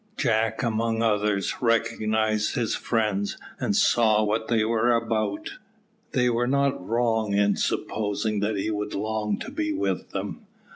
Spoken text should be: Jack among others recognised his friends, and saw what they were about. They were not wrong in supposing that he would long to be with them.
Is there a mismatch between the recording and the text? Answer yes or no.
no